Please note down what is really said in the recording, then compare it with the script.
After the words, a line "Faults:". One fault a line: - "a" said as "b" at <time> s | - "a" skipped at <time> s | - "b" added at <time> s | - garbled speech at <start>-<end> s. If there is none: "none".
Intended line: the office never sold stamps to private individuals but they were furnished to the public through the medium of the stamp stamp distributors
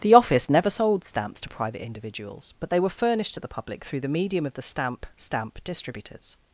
the office never sold stamps to private individuals but they were furnished to the public through the medium of the stamp stamp distributors
Faults:
none